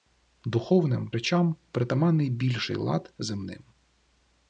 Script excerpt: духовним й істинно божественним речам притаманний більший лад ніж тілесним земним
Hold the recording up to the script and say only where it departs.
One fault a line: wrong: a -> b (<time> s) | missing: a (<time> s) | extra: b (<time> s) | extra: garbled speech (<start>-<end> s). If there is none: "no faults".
missing: й істинно божественним (1.1 s)
missing: ніж тілесним (3.1 s)